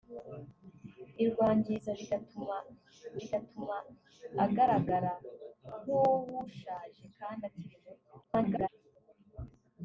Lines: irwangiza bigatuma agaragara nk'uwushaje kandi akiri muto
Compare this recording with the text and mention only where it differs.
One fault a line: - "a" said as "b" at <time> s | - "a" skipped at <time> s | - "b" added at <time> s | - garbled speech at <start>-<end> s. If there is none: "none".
- "bigatuma" added at 3.2 s
- garbled speech at 8.2-8.7 s